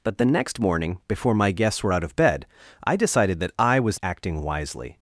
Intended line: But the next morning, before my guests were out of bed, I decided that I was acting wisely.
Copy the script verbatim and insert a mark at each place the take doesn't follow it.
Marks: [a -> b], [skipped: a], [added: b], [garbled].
But the next morning, before my guests were out of bed, I decided that I was acting wisely.